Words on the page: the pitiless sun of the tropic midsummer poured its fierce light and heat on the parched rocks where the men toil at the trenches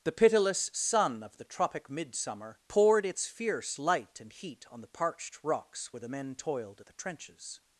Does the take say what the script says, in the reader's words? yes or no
no